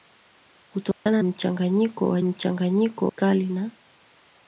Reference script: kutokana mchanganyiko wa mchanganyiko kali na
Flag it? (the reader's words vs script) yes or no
no